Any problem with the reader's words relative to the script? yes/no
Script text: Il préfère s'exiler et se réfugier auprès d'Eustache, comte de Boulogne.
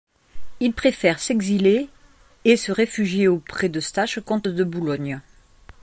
no